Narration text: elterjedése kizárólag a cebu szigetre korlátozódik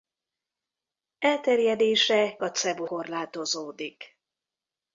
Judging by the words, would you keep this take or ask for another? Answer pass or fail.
fail